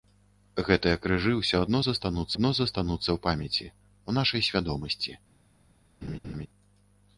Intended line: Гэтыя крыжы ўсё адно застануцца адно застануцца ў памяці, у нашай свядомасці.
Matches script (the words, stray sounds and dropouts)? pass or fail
fail